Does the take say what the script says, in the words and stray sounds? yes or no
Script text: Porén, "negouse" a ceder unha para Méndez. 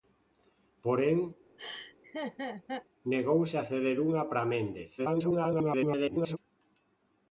no